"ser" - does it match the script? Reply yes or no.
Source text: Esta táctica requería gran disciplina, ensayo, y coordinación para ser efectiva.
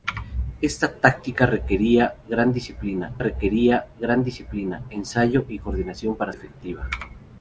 no